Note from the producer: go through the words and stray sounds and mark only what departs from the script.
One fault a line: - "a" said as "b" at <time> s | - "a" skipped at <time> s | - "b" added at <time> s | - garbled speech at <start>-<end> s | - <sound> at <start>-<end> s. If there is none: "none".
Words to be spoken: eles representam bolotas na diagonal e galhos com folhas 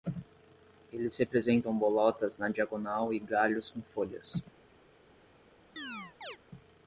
- chirp at 5.8-6.4 s